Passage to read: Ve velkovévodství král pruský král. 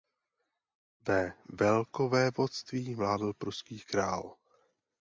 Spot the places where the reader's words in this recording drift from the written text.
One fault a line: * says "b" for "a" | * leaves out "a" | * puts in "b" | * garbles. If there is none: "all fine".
* says "vládl" for "král"